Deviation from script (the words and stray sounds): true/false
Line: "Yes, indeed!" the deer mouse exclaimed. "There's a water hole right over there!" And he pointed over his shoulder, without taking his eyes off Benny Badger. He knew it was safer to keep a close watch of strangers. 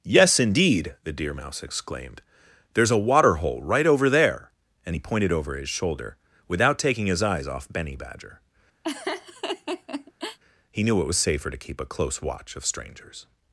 true